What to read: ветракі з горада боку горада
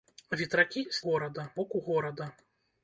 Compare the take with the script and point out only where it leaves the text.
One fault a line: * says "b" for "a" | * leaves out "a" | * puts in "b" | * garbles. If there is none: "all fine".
all fine